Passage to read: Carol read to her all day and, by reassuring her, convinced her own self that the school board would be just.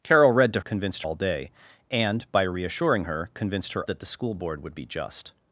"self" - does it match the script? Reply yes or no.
no